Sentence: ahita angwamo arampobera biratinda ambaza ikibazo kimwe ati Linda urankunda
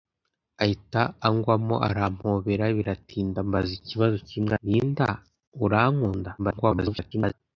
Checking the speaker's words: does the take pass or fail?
fail